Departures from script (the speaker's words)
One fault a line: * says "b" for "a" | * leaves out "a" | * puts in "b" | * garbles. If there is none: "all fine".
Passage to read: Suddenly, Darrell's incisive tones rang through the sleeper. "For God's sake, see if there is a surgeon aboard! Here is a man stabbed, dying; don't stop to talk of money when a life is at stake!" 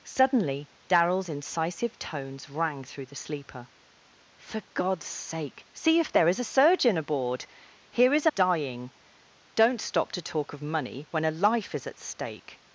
* leaves out "man stabbed"